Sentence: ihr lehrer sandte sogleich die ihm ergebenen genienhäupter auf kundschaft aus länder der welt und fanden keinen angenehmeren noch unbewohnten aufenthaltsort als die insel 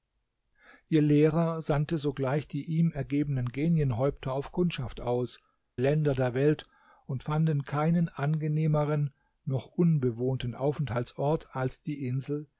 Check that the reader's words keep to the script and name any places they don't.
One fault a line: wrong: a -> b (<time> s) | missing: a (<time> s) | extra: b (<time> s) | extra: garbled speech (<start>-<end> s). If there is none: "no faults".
no faults